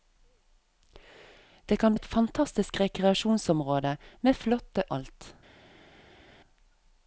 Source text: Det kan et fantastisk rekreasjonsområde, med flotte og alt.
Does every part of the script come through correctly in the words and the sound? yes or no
yes